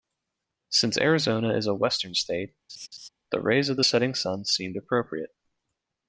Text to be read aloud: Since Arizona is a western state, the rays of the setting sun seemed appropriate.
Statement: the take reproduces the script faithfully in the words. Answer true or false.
true